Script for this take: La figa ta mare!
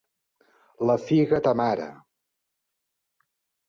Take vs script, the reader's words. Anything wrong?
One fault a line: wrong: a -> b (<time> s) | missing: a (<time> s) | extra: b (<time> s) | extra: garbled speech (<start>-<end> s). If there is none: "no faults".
no faults